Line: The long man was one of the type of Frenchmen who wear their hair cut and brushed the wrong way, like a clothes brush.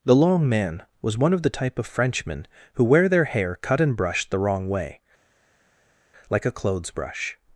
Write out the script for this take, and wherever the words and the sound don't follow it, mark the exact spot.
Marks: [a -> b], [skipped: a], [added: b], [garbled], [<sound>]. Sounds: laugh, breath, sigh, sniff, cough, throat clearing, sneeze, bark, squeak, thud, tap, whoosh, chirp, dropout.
The long man was one of the type of Frenchmen who wear their hair cut and brushed the wrong way, like a clothes brush.